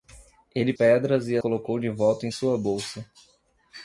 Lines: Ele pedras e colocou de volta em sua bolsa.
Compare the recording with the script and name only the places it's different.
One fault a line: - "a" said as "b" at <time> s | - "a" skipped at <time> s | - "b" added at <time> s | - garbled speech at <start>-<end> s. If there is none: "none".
none